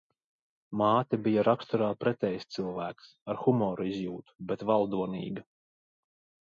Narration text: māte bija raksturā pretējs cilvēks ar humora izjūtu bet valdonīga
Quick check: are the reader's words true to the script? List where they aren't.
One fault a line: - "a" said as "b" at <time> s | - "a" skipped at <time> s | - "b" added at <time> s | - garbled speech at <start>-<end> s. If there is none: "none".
none